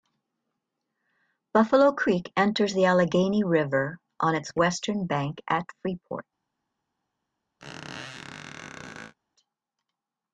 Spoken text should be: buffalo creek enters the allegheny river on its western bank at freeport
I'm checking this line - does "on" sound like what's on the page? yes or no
yes